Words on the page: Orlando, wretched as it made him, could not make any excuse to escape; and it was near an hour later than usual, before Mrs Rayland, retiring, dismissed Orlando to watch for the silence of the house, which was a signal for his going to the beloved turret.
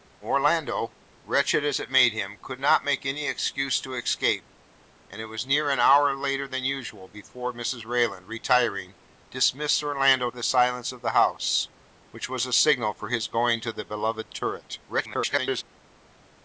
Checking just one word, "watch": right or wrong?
wrong